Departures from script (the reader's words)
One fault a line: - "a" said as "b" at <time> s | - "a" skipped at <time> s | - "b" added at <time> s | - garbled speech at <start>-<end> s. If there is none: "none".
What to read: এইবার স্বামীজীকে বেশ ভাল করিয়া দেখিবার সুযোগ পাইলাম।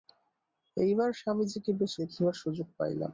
- "ভাল করিয়া" skipped at 1.9 s